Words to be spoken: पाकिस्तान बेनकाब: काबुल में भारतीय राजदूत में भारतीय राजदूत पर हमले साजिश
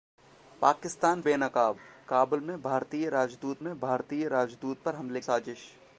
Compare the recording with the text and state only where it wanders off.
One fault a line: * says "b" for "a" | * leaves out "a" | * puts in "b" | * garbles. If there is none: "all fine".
all fine